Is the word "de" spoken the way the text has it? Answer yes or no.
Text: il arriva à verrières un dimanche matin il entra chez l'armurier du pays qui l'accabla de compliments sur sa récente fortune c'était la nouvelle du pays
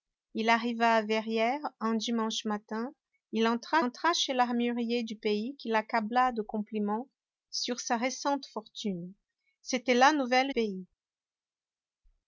yes